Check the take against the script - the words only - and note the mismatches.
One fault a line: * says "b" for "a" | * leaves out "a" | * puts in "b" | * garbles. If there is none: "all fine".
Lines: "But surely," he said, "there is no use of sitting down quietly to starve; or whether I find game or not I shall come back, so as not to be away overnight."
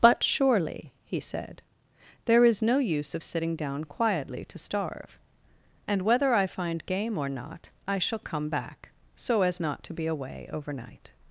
* says "and" for "or"